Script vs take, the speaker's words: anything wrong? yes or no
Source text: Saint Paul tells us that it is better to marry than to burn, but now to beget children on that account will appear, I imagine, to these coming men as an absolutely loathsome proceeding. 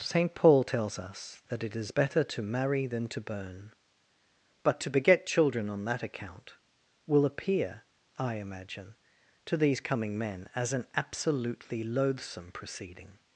yes